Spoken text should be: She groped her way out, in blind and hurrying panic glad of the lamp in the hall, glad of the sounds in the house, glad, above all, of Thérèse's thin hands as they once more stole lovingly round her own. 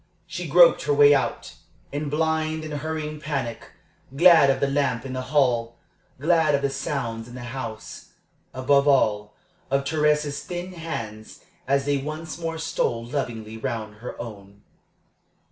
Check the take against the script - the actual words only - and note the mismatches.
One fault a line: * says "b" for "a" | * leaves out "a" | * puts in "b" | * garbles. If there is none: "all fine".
* leaves out "glad"